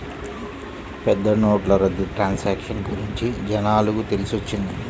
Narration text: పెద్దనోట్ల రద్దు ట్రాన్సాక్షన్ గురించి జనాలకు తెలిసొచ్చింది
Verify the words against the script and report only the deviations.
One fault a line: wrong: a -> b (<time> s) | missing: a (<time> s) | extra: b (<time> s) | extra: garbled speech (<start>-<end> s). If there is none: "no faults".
no faults